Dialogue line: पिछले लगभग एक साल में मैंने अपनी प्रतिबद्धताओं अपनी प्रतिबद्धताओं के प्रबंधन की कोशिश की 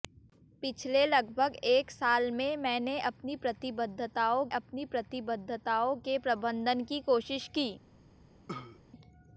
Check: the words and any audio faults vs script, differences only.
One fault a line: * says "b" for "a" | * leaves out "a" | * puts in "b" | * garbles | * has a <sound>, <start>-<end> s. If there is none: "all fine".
* has a cough, 8.5-8.8 s